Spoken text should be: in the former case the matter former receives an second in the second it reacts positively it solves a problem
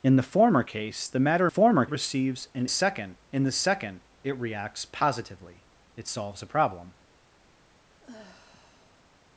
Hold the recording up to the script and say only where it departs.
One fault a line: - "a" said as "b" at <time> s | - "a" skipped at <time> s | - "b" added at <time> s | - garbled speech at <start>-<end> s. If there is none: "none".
none